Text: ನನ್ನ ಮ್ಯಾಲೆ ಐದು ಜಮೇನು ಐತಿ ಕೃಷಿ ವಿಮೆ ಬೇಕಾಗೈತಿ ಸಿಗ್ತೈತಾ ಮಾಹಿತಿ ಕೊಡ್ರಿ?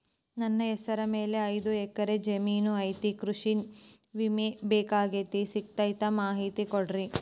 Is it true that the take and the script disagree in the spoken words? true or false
true